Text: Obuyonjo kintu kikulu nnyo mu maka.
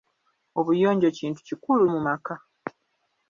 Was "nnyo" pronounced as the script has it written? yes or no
no